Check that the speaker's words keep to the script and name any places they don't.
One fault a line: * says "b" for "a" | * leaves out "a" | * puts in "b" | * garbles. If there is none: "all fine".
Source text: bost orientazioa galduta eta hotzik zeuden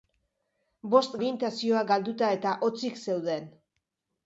all fine